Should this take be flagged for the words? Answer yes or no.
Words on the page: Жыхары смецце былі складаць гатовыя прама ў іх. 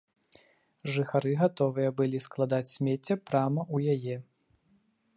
yes